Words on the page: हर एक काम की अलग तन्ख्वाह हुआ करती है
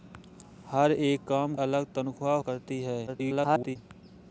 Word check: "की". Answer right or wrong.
wrong